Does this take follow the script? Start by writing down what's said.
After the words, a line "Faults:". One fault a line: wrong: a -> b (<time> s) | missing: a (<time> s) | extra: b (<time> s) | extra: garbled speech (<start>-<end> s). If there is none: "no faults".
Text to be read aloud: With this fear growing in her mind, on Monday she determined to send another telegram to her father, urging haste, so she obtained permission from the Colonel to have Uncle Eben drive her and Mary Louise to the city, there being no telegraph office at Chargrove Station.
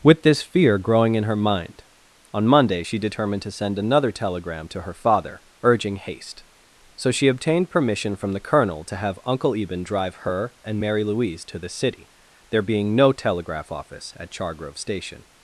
With this fear growing in her mind, on Monday she determined to send another telegram to her father, urging haste, so she obtained permission from the Colonel to have Uncle Eben drive her and Mary Louise to the city, there being no telegraph office at Chargrove Station.
Faults:
no faults